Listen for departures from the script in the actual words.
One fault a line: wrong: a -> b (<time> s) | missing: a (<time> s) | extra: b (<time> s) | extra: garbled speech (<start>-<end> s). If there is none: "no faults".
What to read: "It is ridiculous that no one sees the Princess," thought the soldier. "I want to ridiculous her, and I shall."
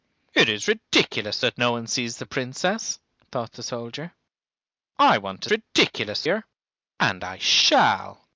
no faults